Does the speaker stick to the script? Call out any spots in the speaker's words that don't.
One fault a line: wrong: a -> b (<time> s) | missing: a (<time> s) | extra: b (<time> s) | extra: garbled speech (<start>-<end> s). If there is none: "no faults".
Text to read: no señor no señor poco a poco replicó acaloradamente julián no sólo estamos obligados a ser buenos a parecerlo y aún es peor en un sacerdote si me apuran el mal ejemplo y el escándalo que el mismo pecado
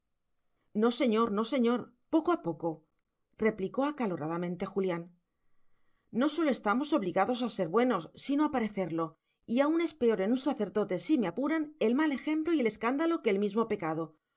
extra: sino (8.2 s)